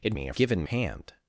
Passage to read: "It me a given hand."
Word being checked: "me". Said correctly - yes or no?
yes